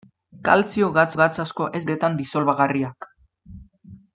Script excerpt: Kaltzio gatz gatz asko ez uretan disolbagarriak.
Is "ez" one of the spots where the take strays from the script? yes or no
no